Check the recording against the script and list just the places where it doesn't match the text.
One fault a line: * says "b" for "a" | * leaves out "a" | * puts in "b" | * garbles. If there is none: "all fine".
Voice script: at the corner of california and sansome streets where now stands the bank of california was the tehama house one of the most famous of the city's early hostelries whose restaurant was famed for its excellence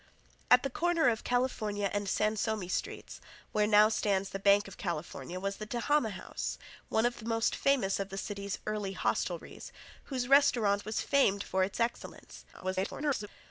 * garbles